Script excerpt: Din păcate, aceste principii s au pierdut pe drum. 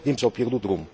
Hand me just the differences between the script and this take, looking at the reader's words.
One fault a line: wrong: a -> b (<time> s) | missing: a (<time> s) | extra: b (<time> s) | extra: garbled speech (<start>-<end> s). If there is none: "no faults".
missing: păcate aceste principii (0.1 s)
missing: pe (0.6 s)